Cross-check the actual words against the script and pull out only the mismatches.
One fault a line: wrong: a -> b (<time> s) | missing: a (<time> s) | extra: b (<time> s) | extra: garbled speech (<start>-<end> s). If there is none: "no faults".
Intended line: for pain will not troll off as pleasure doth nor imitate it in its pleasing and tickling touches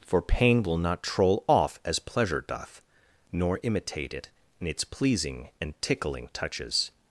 no faults